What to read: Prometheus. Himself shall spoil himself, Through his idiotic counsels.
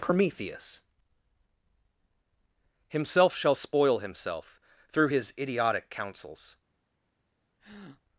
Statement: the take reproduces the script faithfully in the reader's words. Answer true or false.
true